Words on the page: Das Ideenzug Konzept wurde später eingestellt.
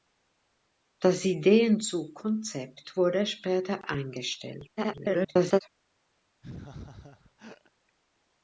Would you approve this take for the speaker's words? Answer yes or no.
no